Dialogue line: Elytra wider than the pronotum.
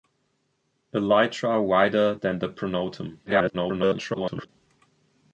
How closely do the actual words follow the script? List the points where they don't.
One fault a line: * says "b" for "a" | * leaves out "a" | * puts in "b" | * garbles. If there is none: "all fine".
* garbles